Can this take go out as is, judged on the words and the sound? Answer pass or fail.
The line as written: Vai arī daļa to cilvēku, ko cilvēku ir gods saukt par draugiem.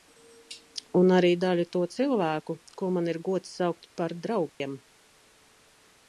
fail